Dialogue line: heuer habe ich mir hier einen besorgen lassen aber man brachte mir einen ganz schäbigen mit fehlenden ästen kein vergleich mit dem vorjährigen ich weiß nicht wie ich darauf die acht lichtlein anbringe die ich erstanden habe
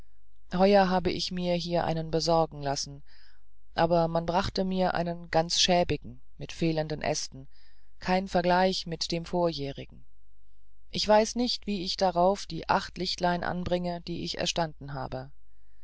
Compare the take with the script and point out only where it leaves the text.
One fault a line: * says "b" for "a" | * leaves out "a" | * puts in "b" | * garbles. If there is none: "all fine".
all fine